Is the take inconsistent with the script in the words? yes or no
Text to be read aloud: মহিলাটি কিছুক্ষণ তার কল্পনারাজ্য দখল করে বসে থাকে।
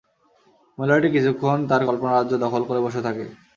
no